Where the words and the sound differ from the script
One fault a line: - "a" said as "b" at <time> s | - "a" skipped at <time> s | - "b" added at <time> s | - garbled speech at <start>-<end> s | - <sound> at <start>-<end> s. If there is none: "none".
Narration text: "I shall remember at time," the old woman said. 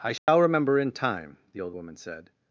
- dropout at 0.2-0.3 s
- "at" said as "in" at 0.8 s